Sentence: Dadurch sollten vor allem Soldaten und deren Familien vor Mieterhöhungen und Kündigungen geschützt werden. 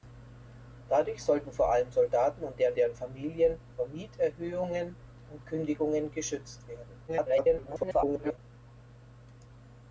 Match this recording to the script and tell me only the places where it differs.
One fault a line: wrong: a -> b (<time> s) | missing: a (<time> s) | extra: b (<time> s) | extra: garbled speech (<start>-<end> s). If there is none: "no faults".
extra: deren (2.8 s)
extra: garbled speech (7.1-8.4 s)